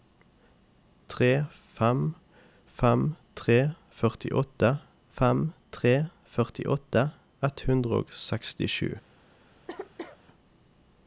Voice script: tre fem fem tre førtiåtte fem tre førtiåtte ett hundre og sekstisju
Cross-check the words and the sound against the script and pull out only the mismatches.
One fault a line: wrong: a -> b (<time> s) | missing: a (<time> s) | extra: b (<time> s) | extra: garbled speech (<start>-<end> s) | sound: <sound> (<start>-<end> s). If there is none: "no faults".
sound: cough (9.7-10.2 s)